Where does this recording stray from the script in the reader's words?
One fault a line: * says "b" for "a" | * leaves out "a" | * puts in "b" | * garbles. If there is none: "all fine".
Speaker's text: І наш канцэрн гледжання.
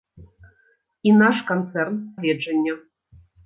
all fine